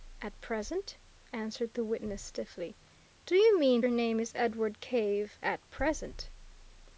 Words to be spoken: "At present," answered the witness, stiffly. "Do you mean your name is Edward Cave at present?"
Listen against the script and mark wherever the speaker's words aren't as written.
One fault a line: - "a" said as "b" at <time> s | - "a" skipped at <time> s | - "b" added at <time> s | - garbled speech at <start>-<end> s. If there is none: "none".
none